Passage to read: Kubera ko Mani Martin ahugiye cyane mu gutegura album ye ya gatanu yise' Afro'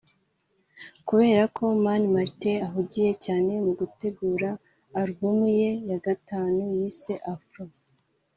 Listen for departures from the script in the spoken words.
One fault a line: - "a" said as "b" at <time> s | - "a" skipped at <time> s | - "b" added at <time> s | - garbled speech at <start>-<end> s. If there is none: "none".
none